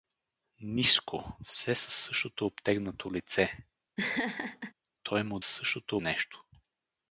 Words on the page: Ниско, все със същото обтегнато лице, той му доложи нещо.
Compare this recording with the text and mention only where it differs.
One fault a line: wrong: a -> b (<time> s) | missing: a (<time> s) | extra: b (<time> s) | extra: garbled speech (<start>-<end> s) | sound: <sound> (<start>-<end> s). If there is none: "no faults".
sound: laugh (4.0-4.7 s)
wrong: доложи -> същото (5.4 s)